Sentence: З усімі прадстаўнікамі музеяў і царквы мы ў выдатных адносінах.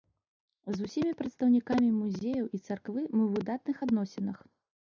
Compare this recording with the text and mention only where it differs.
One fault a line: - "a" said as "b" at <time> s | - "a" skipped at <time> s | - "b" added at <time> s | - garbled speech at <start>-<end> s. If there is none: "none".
none